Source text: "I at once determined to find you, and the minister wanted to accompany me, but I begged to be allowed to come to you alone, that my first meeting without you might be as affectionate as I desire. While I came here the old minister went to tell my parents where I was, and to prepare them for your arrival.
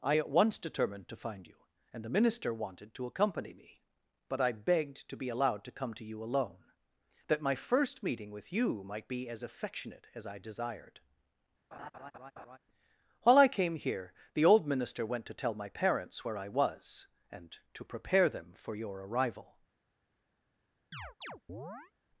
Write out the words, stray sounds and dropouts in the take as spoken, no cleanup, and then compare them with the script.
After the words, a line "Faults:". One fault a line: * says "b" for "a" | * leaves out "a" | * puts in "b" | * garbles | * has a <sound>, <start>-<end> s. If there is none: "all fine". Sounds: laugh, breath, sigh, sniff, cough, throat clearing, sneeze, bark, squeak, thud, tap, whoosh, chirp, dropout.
"I at once determined to find you, and the minister wanted to accompany me, but I begged to be allowed to come to you alone, that my first meeting with you might be as affectionate as I desired. While I came here the old minister went to tell my parents where I was, and to prepare them for your arrival.
Faults:
* says "with" for "without"
* says "desired" for "desire"
* has a laugh, 11.7-12.6 s
* has a chirp, 20.9-21.9 s